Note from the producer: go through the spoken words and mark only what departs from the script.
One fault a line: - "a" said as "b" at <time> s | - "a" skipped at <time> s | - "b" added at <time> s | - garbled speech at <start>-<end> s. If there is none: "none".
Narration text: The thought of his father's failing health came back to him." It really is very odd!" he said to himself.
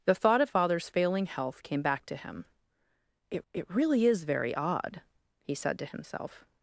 - "his" skipped at 0.5 s
- "it" added at 3.5 s